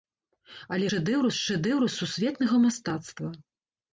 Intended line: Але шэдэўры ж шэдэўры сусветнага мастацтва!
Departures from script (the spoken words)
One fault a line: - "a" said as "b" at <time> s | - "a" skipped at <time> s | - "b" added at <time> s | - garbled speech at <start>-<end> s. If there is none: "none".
none